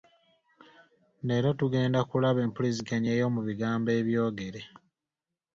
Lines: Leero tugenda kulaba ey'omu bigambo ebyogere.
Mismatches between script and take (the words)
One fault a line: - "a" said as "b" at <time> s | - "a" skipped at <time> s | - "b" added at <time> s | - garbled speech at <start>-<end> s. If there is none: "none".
- "empuliziganya" added at 2.5 s